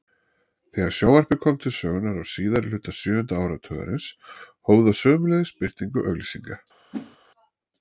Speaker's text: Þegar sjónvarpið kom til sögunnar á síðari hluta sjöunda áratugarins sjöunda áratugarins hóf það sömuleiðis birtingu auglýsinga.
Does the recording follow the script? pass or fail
fail